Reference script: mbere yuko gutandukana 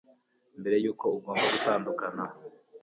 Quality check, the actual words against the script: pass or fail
fail